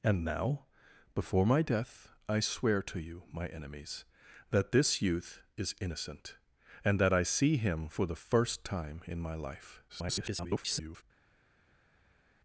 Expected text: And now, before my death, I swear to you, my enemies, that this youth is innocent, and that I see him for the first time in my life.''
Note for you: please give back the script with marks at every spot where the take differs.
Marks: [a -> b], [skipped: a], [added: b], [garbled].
And now, before my death, I swear to you, my enemies, that this youth is innocent, and that I see him for the first time in my life.'' [garbled]